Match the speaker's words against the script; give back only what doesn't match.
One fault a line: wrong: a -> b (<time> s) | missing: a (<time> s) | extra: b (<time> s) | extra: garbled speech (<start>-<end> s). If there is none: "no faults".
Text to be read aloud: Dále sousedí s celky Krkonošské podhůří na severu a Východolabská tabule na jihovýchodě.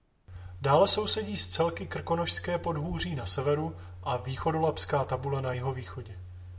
no faults